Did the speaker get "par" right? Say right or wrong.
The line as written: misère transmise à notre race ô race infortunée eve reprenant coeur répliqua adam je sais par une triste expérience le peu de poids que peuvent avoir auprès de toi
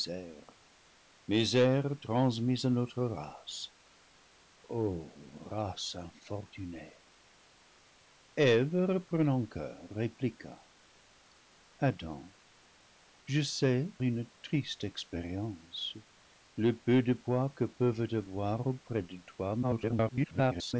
wrong